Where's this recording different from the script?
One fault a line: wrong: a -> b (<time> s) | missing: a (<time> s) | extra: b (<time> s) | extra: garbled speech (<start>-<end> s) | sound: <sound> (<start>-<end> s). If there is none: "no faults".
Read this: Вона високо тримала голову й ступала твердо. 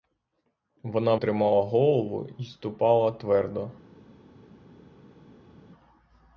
missing: високо (1.1 s)